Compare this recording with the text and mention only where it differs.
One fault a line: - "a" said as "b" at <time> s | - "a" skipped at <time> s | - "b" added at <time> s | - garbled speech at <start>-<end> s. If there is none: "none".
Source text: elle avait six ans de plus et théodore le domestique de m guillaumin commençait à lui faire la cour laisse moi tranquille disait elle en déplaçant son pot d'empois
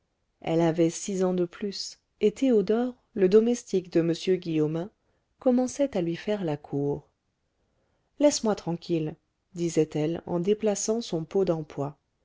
none